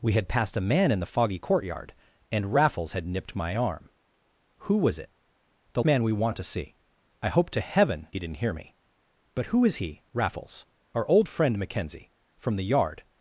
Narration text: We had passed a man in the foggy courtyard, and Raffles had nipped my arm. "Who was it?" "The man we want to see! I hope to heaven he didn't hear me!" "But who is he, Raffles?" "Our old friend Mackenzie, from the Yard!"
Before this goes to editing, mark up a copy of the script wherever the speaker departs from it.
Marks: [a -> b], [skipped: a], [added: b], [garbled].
We had passed a man in the foggy courtyard, and Raffles had nipped my arm. "Who was it?" "The man we want to see! I hope to heaven he didn't hear me!" "But who is he, Raffles?" "Our old friend Mackenzie, from the Yard!"